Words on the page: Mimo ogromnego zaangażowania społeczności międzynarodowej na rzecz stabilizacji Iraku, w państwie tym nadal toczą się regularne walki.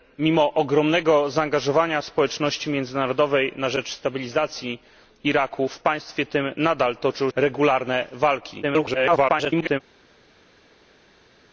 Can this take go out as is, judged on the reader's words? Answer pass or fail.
fail